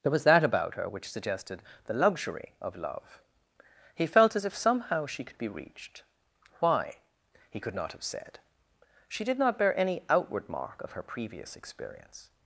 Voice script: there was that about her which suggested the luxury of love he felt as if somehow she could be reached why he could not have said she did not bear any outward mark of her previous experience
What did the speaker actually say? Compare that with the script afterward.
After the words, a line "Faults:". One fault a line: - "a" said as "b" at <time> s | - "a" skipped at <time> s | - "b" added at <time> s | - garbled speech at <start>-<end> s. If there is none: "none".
there was that about her which suggested the luxury of love he felt as if somehow she could be reached why he could not have said she did not bear any outward mark of her previous experience
Faults:
none